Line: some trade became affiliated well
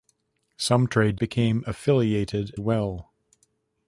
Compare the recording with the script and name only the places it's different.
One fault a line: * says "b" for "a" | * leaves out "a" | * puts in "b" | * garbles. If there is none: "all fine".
all fine